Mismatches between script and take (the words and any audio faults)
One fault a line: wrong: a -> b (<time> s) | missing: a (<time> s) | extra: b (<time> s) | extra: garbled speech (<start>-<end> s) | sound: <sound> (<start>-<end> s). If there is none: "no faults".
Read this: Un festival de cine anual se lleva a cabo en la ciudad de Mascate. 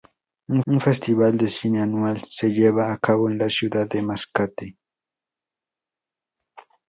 extra: un (0.7 s)